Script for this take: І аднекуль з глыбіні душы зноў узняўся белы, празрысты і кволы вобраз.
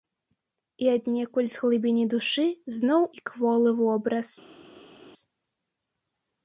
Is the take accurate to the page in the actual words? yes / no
no